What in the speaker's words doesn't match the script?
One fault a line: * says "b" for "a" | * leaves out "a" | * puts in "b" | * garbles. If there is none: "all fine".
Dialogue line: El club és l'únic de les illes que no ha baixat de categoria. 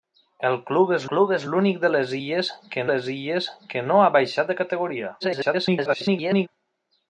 * puts in "club és"
* puts in "les illes que"
* garbles